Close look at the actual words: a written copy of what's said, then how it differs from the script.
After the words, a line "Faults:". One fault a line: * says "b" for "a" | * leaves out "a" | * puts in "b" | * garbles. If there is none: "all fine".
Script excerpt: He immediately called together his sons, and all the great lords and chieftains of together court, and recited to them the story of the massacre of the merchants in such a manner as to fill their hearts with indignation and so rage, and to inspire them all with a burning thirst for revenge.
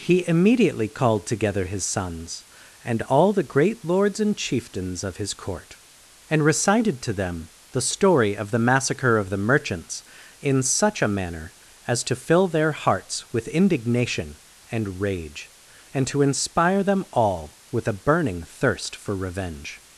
He immediately called together his sons, and all the great lords and chieftains of his court, and recited to them the story of the massacre of the merchants in such a manner as to fill their hearts with indignation and rage, and to inspire them all with a burning thirst for revenge.
Faults:
* says "his" for "together"
* leaves out "so"